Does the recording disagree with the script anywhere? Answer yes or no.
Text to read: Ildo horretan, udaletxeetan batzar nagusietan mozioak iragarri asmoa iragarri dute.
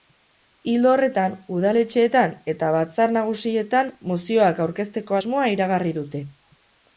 yes